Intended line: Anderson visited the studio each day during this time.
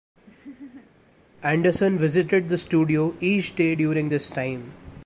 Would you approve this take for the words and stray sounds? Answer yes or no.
no